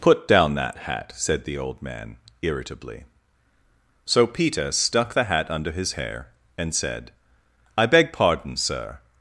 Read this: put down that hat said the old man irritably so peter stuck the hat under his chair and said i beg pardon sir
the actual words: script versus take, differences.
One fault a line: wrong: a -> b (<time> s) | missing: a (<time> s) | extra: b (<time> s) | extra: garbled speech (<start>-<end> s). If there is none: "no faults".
wrong: chair -> hair (5.9 s)